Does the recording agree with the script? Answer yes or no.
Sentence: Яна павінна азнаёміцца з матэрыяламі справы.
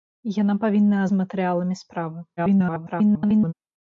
no